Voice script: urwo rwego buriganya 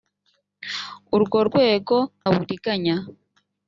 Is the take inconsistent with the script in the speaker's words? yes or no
no